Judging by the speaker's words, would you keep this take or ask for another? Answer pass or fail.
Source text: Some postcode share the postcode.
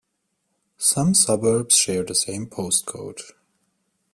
fail